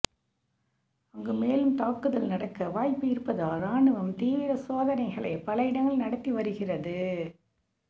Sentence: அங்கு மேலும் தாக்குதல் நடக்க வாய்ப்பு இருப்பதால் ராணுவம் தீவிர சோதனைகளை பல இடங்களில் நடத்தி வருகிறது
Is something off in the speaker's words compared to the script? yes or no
no